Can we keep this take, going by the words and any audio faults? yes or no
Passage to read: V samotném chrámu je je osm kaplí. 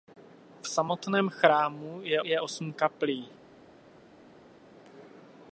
yes